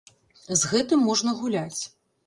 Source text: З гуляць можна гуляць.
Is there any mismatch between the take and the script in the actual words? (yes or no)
yes